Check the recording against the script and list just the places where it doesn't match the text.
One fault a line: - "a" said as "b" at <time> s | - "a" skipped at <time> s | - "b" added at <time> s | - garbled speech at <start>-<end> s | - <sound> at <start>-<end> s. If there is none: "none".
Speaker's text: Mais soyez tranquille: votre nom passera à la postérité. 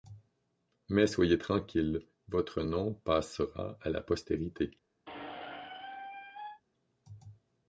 - squeak at 5.1-6.6 s